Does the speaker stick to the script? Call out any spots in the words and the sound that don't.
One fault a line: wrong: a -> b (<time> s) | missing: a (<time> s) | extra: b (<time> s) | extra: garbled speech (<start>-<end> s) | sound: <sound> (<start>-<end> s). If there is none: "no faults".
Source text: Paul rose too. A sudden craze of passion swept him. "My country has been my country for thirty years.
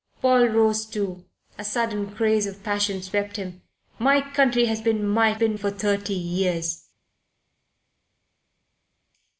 wrong: country -> been (5.3 s)